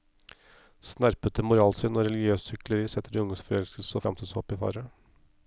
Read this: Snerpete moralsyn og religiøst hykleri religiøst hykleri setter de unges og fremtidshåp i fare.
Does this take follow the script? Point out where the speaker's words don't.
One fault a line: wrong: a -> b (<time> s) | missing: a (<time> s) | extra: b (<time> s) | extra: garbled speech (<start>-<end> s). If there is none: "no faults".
missing: religiøst hykleri (2.9 s)
extra: forelskelse (3.5 s)